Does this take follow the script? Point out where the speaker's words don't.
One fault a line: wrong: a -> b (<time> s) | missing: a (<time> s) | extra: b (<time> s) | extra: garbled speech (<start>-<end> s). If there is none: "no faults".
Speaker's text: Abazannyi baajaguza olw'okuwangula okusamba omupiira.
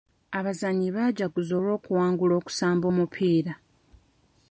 no faults